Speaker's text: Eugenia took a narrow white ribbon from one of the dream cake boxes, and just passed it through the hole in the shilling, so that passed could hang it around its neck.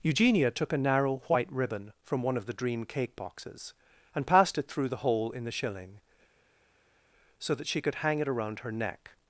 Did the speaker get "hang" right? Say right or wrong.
right